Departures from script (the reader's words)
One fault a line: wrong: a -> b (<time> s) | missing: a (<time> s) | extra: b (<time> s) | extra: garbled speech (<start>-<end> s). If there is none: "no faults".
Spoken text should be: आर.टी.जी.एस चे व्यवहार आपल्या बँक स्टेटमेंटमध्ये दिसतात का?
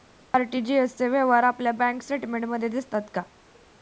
no faults